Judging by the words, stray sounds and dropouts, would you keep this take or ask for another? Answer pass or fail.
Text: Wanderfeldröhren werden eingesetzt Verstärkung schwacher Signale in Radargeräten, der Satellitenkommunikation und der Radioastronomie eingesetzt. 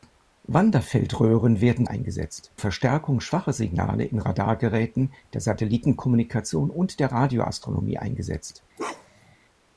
fail